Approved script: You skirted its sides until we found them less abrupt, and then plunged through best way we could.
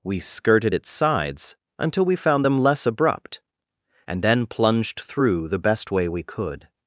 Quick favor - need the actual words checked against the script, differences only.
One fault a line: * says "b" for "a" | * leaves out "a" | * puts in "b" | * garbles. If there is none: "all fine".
* says "We" for "You"
* puts in "the"